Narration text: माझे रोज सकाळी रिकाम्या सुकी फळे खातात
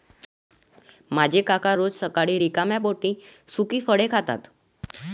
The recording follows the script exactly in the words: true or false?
false